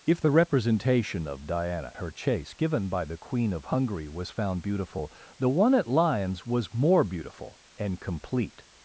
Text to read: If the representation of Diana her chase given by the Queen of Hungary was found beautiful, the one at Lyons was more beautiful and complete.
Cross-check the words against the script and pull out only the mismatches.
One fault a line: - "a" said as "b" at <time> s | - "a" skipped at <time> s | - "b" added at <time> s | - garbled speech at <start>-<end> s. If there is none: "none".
none